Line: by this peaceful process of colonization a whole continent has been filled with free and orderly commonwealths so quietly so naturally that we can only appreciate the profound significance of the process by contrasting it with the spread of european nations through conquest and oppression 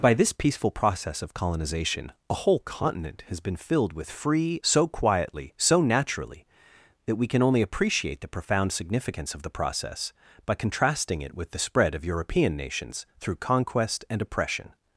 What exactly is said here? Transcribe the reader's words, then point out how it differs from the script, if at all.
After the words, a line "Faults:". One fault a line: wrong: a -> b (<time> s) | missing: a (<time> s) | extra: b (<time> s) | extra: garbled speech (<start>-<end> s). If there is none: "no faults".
by this peaceful process of colonization a whole continent has been filled with free so quietly so naturally that we can only appreciate the profound significance of the process by contrasting it with the spread of european nations through conquest and oppression
Faults:
missing: and orderly commonwealths (4.6 s)